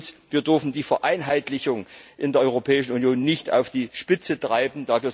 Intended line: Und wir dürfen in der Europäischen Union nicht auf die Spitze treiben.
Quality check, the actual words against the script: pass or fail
fail